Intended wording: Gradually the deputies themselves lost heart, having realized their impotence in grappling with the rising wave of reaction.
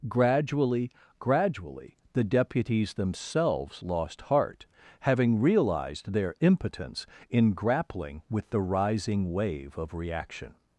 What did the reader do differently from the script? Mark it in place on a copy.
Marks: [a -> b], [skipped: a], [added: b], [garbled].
Gradually [added: gradually] the deputies themselves lost heart, having realized their impotence in grappling with the rising wave of reaction.